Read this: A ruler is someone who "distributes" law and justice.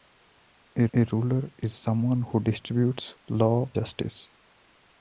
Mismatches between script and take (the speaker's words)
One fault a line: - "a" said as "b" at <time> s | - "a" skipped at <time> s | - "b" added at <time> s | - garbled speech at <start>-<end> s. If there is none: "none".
- "a" added at 0.9 s
- "and" skipped at 3.7 s